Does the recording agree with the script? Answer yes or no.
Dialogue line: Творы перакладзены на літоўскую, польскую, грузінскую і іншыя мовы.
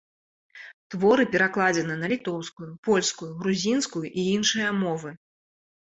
yes